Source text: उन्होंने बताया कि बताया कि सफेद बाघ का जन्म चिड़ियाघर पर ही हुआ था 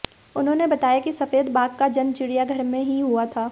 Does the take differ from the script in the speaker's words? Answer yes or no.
yes